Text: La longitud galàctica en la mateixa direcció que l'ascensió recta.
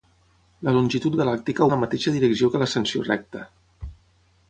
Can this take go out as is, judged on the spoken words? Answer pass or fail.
pass